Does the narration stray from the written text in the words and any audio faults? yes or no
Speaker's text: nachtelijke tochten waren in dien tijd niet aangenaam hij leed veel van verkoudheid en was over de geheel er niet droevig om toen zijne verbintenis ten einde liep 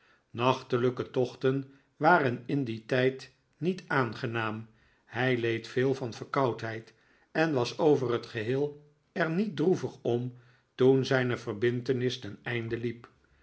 yes